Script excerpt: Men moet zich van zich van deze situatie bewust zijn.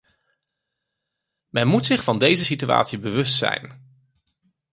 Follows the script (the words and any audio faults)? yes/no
no